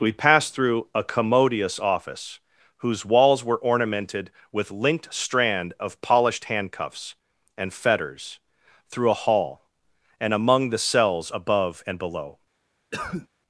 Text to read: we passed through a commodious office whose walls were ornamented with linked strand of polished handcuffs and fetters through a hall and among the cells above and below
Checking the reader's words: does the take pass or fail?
pass